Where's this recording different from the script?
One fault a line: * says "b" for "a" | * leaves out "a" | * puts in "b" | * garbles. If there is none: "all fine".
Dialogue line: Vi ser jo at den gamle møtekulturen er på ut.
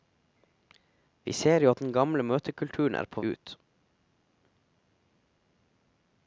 all fine